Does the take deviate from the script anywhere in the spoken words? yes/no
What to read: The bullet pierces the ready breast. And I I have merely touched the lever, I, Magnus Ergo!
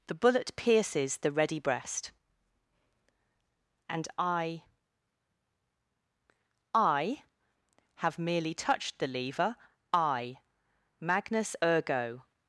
no